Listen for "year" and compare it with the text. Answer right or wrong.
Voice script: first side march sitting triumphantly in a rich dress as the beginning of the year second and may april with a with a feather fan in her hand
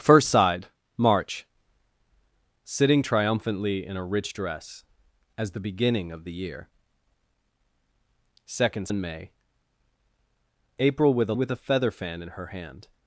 right